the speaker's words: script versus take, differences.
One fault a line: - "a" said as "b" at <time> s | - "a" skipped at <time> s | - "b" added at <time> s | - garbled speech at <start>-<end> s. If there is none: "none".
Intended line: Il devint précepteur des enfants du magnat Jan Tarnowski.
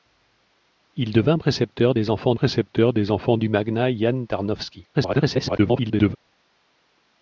- "précepteur des enfants" added at 2.3 s
- garbled speech at 4.9-6.2 s